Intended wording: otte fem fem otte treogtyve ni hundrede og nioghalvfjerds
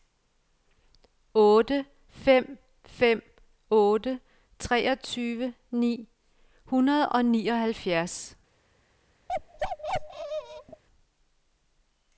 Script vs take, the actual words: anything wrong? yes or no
no